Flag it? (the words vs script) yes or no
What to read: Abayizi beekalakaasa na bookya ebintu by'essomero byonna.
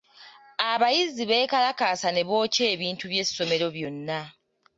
yes